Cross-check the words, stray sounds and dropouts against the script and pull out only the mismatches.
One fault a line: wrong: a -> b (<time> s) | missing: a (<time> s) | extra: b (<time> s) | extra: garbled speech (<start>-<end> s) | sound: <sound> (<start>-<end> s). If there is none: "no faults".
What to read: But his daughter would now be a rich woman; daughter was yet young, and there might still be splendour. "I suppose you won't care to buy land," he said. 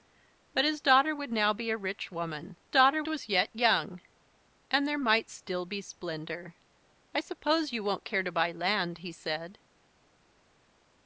no faults